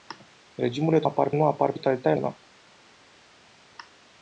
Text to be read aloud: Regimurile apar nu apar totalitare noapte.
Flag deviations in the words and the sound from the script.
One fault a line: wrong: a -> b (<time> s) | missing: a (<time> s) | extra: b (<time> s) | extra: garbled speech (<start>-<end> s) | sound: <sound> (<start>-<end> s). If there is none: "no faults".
no faults